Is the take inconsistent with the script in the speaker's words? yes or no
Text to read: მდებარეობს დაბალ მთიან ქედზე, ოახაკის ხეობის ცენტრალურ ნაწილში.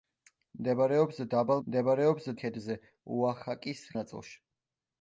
yes